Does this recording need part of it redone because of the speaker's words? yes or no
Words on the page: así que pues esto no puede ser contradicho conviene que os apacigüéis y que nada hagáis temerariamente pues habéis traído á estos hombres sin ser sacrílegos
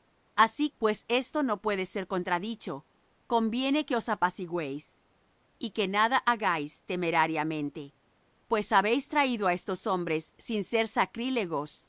yes